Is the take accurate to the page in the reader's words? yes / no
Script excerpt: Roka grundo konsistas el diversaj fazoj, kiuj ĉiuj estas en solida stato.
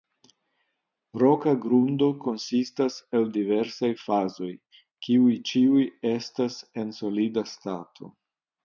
yes